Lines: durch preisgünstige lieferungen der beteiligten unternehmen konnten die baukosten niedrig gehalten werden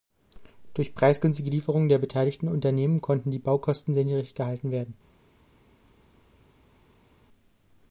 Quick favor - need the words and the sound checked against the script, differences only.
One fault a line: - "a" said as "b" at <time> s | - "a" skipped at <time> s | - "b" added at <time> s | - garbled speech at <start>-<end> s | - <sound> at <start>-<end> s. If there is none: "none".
- "sehr" added at 3.9 s